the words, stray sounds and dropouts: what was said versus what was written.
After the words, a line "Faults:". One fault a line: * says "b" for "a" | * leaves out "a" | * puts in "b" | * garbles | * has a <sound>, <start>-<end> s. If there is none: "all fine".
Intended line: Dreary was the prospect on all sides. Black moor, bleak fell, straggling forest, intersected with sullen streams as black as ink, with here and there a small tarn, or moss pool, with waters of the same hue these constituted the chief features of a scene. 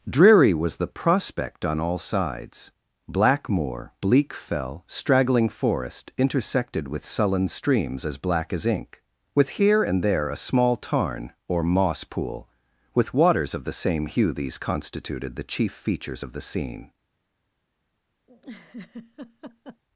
Dreary was the prospect on all sides. Black moor, bleak fell, straggling forest, intersected with sullen streams as black as ink, with here and there a small tarn, or moss pool, with waters of the same hue these constituted the chief features of the scene.
Faults:
* says "the" for "a"
* has a laugh, 18.3-19.8 s